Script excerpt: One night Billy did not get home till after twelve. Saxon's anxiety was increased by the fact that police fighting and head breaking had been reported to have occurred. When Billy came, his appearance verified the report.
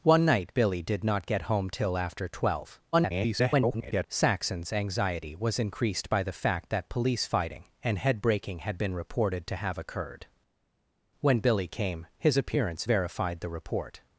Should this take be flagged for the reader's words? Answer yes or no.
yes